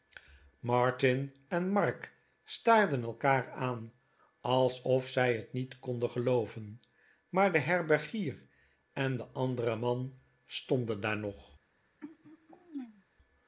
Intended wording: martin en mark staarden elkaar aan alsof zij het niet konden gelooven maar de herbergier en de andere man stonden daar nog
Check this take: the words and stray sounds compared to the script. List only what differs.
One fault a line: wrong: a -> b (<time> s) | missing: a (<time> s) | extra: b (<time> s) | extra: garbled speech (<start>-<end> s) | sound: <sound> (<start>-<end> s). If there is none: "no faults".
sound: throat clearing (12.0-13.0 s)